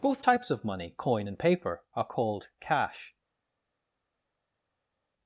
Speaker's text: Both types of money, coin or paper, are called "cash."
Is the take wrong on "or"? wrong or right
wrong